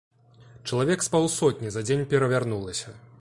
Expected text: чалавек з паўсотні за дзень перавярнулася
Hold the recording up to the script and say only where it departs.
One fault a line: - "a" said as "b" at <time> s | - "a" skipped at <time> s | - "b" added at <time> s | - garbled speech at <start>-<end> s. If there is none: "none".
none